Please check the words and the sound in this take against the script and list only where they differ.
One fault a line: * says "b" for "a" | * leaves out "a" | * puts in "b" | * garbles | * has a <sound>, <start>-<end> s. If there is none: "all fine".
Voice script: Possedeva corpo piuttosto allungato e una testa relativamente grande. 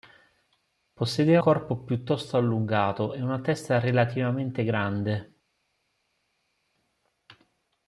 all fine